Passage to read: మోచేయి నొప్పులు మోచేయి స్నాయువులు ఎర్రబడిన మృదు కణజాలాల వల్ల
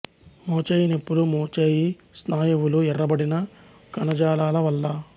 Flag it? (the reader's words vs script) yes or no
yes